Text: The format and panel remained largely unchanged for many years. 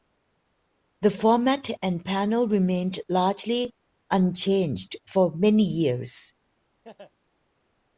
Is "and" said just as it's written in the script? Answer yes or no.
yes